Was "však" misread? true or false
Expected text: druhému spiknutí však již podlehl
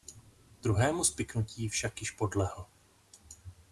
false